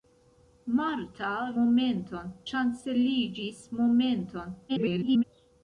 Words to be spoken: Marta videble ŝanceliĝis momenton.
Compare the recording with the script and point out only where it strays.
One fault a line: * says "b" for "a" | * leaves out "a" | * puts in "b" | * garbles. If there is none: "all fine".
* says "momenton" for "videble"
* garbles